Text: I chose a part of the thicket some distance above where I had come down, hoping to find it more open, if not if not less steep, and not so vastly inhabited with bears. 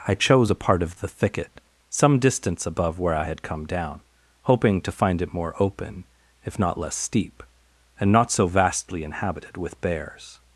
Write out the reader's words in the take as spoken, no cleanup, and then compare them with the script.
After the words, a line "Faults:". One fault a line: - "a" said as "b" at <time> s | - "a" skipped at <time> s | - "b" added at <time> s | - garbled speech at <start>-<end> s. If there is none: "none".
I chose a part of the thicket some distance above where I had come down, hoping to find it more open, if not less steep, and not so vastly inhabited with bears.
Faults:
- "if not" skipped at 6.8 s